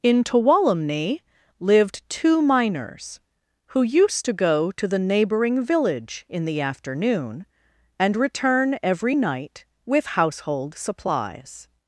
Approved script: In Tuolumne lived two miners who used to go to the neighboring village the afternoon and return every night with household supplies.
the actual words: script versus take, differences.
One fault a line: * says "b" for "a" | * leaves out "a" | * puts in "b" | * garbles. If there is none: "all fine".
* puts in "in"